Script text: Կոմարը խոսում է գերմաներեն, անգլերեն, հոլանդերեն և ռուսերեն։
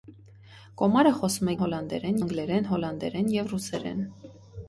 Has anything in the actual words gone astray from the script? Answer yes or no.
yes